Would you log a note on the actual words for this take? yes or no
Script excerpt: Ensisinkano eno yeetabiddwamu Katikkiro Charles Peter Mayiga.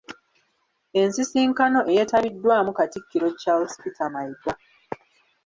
yes